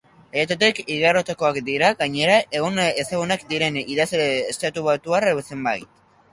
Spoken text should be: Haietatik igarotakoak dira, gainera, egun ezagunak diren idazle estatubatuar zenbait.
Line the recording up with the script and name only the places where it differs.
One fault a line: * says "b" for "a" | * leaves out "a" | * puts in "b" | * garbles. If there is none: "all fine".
all fine